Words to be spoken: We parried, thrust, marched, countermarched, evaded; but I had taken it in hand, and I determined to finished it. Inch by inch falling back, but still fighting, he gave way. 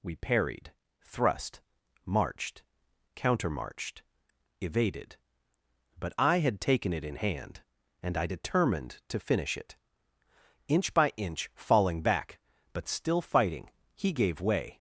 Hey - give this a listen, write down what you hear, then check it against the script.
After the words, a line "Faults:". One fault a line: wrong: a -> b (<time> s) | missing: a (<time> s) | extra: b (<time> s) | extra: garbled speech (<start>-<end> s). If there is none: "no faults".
We parried, thrust, marched, countermarched, evaded; but I had taken it in hand, and I determined to finish it. Inch by inch falling back, but still fighting, he gave way.
Faults:
wrong: finished -> finish (9.2 s)